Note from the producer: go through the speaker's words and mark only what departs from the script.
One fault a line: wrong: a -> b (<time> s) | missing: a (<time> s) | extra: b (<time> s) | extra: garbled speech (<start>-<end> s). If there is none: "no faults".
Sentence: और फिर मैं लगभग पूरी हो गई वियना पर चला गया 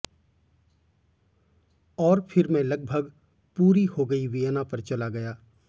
no faults